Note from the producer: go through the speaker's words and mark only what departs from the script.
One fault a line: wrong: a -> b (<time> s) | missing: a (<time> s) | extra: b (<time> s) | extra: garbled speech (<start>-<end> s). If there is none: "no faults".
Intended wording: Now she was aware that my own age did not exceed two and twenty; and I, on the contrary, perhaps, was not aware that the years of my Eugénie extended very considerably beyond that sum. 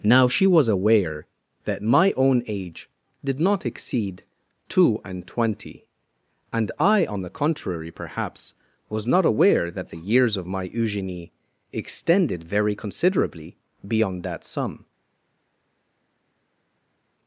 no faults